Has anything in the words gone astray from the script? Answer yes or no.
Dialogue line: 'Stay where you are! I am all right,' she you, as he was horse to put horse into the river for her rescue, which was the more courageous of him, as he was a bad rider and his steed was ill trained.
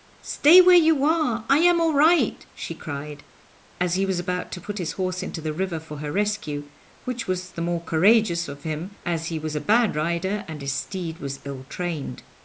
yes